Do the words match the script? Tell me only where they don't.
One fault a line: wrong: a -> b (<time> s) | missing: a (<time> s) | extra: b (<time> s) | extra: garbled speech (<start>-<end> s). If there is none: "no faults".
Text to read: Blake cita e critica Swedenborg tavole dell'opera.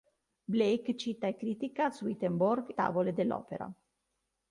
no faults